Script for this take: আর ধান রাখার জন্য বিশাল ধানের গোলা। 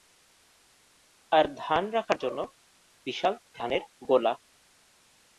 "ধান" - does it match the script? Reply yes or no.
yes